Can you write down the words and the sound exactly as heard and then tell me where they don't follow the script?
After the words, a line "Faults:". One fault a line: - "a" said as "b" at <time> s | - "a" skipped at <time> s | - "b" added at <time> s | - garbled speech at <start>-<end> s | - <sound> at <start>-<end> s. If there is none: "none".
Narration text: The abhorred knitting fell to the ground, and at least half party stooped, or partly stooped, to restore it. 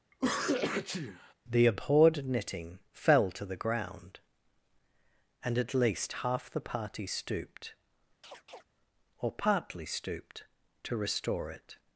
The abhorred knitting fell to the ground, and at least half the party stooped, or partly stooped, to restore it.
Faults:
- sneeze at 0.1-1.3 s
- "the" added at 6.5 s
- chirp at 8.2-8.6 s